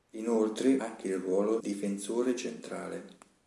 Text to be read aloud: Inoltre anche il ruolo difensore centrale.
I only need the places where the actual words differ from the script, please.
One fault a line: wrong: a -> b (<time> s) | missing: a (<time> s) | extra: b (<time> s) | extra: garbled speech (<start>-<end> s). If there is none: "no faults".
no faults